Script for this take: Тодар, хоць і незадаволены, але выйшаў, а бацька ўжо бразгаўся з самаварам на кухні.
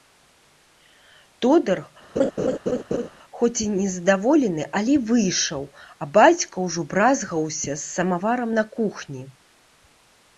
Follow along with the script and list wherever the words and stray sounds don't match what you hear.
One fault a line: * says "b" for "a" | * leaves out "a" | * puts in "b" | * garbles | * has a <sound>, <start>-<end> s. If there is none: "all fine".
* has a laugh, 2.2-3.1 s